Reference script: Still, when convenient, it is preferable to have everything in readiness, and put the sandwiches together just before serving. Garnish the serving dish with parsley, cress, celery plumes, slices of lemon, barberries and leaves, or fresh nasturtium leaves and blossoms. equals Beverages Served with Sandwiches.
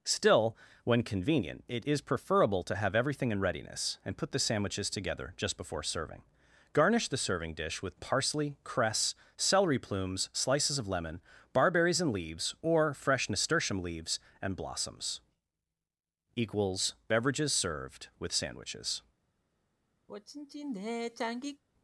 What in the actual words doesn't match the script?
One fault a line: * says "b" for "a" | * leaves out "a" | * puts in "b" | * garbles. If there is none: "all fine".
all fine